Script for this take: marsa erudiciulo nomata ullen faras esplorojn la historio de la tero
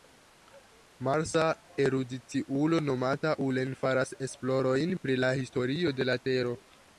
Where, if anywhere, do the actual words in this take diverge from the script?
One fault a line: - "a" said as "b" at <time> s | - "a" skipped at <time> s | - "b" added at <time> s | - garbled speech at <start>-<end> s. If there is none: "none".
- "pri" added at 5.0 s